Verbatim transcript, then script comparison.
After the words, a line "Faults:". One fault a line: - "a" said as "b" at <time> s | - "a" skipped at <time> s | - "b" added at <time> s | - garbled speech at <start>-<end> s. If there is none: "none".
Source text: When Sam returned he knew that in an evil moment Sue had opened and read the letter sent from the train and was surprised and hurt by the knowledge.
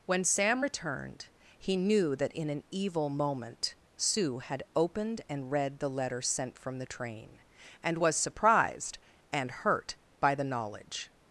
When Sam returned he knew that in an evil moment Sue had opened and read the letter sent from the train and was surprised and hurt by the knowledge.
Faults:
none